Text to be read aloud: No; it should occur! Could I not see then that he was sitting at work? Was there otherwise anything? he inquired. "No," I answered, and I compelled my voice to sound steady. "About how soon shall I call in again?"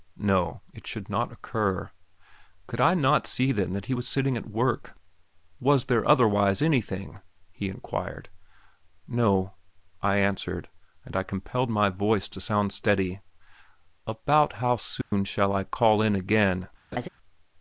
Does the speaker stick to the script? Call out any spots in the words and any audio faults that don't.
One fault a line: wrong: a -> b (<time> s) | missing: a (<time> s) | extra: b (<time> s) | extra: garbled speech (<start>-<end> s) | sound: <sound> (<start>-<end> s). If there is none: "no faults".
extra: not (1.1 s)
sound: dropout (15.0-15.1 s)
sound: laugh (16.9-17.1 s)